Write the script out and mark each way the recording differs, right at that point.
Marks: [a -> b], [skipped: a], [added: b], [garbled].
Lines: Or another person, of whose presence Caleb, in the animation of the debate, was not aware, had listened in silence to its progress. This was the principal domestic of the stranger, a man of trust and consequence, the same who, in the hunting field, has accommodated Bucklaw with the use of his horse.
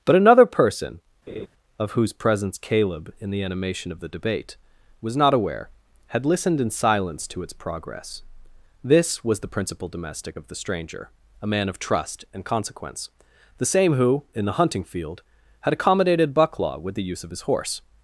[Or -> But] another person, of whose presence Caleb, in the animation of the debate, was not aware, had listened in silence to its progress. This was the principal domestic of the stranger, a man of trust and consequence, the same who, in the hunting field, [has -> had] accommodated Bucklaw with the use of his horse.